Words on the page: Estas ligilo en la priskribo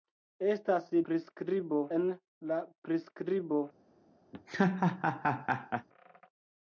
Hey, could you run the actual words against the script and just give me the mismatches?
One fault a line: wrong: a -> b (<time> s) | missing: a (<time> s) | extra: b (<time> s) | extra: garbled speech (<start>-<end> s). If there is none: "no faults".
wrong: ligilo -> priskribo (1.1 s)